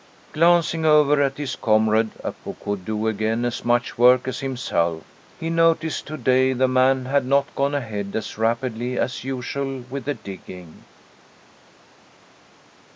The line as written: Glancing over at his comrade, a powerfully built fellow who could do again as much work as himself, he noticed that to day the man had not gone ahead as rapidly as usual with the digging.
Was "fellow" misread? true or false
true